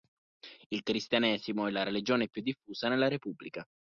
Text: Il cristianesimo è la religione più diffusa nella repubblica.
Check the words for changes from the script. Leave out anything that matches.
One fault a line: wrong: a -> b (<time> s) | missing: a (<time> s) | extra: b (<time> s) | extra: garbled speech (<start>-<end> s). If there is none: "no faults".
no faults